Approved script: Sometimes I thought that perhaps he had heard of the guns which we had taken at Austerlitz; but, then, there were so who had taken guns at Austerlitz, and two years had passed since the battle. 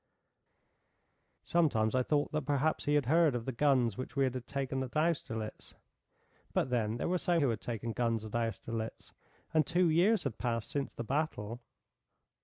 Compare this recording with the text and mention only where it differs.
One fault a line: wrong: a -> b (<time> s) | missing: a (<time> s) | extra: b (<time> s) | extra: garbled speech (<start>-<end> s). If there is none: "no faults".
no faults